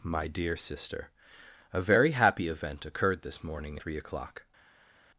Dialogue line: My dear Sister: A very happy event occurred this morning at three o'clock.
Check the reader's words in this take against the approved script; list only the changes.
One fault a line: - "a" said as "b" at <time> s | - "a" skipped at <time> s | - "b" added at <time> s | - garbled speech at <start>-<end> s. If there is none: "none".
- "at" skipped at 3.8 s